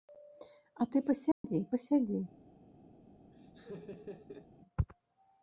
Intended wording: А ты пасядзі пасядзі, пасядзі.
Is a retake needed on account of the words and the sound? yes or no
yes